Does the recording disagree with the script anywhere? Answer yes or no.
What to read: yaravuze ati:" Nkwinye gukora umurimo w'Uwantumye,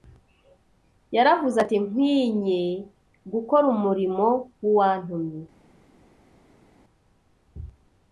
no